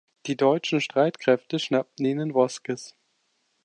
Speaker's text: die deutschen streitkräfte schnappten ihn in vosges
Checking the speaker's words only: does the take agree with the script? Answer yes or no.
yes